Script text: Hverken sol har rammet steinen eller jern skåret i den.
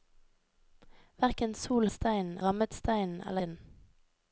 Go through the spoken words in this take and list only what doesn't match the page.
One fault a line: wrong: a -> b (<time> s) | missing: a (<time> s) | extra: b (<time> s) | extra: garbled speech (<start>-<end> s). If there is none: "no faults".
wrong: har -> steinen (1.9 s)
missing: jern skåret (3.4 s)